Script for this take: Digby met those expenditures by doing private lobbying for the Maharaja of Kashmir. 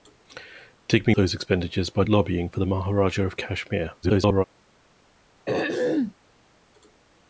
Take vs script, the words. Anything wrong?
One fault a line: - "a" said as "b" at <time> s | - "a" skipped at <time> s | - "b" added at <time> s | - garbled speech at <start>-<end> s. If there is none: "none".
- "met" skipped at 1.1 s
- "doing private" skipped at 2.0 s
- garbled speech at 4.0-4.4 s